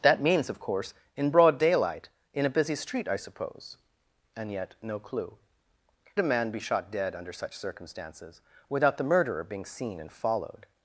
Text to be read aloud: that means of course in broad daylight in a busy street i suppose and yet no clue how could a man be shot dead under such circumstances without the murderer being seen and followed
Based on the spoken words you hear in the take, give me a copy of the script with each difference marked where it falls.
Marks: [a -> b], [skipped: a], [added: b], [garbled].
that means of course in broad daylight in a busy street i suppose and yet no clue [skipped: how could] a man be shot dead under such circumstances without the murderer being seen and followed